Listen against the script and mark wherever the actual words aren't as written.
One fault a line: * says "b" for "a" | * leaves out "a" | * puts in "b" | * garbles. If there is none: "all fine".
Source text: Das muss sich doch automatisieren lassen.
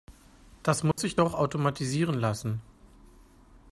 all fine